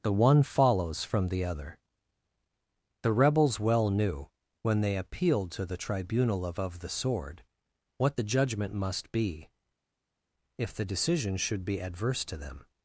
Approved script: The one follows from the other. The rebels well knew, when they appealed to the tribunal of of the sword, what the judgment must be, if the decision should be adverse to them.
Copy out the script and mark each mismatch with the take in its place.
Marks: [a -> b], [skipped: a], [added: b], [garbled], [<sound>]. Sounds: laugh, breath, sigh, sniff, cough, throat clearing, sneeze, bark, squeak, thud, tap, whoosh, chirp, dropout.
The one follows from the other. The rebels well knew, when they appealed to the tribunal of of the sword, what the judgment must be, if the decision should be adverse to them.